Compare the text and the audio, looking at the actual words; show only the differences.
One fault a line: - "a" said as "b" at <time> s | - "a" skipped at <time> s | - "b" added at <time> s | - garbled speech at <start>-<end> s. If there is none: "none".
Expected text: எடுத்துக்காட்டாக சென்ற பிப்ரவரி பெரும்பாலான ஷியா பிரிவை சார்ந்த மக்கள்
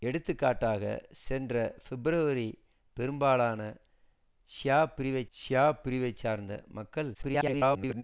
- "ஷியா பிரிவை" added at 5.3 s
- garbled speech at 7.1-8.0 s